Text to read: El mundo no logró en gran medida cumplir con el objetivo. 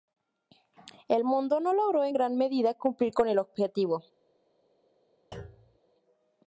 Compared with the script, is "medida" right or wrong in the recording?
right